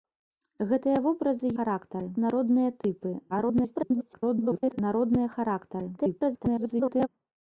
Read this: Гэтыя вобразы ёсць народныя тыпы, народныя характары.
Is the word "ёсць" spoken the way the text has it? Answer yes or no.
no